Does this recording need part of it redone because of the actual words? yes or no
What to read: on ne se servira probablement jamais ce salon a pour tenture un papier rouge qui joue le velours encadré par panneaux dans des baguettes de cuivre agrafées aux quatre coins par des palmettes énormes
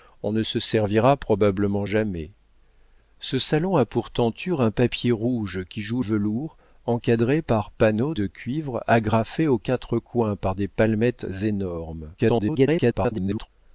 yes